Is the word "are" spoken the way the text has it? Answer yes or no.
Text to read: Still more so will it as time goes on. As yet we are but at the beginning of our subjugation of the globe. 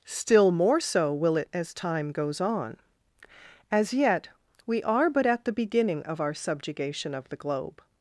yes